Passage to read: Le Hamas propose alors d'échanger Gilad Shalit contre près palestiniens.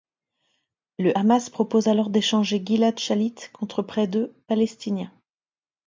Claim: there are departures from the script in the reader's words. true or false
true